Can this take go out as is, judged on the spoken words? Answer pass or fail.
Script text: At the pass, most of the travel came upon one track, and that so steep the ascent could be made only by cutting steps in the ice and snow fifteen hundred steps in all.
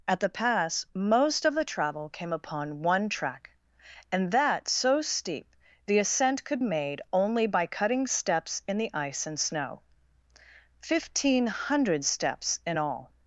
fail